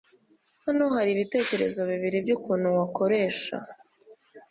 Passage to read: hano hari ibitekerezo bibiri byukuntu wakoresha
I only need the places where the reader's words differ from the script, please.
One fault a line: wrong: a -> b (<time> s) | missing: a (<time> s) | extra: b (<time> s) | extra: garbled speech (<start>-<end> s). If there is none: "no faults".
no faults